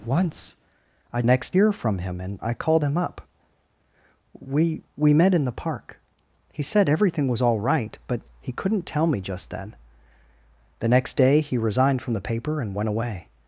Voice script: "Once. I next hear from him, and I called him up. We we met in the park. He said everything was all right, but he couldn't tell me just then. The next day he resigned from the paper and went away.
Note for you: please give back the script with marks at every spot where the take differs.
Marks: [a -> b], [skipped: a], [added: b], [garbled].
"Once. I next hear from him, and I called him up. We we met in the park. He said everything was all right, but he couldn't tell me just then. The next day he resigned from the paper and went away.